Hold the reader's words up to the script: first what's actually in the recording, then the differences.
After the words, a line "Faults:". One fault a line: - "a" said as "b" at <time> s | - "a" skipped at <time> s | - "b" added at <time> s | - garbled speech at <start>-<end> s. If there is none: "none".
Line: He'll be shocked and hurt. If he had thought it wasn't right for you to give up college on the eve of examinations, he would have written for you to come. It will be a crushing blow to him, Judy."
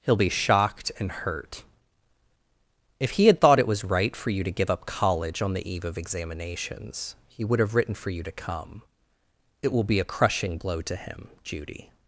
He'll be shocked and hurt. If he had thought it was right for you to give up college on the eve of examinations, he would have written for you to come. It will be a crushing blow to him, Judy."
Faults:
- "wasn't" said as "was" at 3.7 s